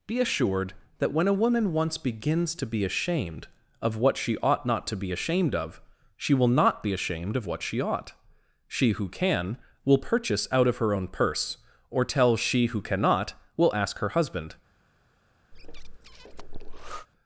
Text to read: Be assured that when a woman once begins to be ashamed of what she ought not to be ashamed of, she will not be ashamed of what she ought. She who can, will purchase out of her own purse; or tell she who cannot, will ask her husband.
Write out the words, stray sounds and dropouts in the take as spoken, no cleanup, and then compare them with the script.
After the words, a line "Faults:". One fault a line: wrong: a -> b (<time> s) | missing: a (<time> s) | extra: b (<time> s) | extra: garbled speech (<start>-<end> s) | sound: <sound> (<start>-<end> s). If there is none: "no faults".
Be assured that when a woman once begins to be ashamed of what she ought not to be ashamed of, she will not be ashamed of what she ought. She who can, will purchase out of her own purse; or tell she who cannot, will ask her husband.
Faults:
sound: breath (15.5-17.1 s)